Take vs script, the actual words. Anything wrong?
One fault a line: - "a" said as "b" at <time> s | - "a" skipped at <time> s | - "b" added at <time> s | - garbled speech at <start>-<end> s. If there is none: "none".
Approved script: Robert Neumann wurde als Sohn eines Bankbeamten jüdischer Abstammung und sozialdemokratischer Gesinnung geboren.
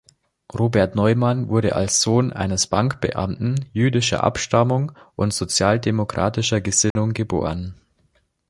none